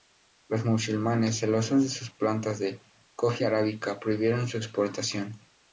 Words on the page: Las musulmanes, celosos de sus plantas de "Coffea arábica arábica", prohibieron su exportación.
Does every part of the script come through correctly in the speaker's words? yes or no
no